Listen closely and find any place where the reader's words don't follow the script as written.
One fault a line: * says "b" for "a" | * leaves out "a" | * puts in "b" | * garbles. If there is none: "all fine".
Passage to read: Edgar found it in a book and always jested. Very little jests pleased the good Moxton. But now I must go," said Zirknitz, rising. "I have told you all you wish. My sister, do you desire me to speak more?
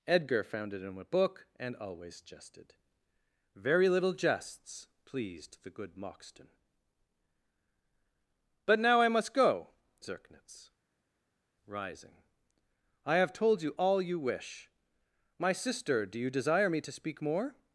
* leaves out "said"